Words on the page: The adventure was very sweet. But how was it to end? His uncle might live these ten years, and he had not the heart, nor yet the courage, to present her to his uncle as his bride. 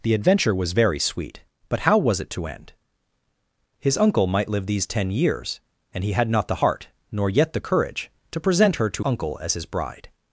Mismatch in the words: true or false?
true